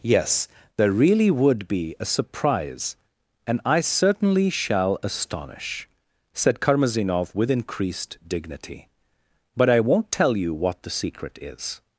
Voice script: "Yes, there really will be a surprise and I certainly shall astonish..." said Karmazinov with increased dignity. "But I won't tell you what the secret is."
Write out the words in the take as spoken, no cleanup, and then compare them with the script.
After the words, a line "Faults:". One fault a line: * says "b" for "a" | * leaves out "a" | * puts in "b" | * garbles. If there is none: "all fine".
"Yes, there really would be a surprise and I certainly shall astonish..." said Karmazinov with increased dignity. "But I won't tell you what the secret is."
Faults:
* says "would" for "will"